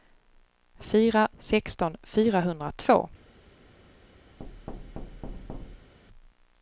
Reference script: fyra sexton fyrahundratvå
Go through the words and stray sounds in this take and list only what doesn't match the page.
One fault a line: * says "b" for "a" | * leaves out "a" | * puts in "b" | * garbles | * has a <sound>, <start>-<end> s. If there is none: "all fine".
* has a thud, 4.4-5.9 s